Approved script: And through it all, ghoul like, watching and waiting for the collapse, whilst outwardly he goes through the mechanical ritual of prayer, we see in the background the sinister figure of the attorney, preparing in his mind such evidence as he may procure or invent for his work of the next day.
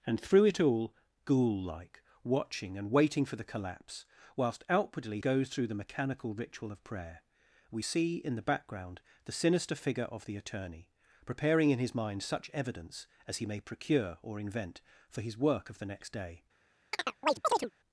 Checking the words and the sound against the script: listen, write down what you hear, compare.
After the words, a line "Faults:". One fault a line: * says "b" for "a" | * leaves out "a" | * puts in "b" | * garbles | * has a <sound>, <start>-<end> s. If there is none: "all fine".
And through it all, ghoul like, watching and waiting for the collapse, whilst outwardly goes through the mechanical ritual of prayer, we see in the background the sinister figure of the attorney, preparing in his mind such evidence as he may procure or invent for his work of the next day.
Faults:
* leaves out "he"
* has a chirp, 16.9-17.7 s